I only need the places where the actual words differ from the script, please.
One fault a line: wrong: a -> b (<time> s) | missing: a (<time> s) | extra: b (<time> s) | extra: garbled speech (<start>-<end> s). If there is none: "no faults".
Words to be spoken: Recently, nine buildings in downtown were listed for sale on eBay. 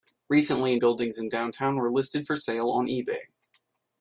missing: nine (0.8 s)